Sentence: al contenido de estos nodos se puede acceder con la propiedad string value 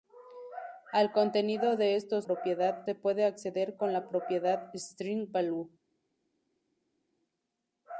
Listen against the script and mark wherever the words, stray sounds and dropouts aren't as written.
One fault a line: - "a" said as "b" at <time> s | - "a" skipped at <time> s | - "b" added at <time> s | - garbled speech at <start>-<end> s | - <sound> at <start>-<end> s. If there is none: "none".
- "nodos" said as "propiedad" at 2.2 s